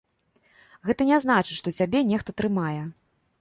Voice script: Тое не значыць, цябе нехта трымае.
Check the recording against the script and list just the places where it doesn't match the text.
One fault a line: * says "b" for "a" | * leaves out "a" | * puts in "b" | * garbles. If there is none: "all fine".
* says "Гэта" for "Тое"
* puts in "што"